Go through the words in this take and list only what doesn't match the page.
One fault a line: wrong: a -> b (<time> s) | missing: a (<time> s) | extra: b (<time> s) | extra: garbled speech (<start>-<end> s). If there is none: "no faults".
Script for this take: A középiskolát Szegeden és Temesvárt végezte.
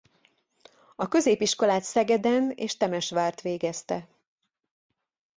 no faults